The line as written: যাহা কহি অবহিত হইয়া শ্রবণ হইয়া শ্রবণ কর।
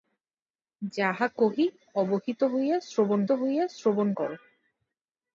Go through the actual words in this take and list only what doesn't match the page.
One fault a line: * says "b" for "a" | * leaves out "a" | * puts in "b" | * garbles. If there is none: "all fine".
all fine